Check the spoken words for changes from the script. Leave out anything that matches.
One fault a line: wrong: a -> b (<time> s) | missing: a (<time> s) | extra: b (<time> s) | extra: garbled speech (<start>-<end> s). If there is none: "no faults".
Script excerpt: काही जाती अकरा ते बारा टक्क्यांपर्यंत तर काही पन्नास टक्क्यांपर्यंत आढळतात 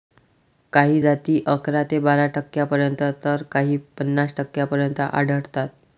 no faults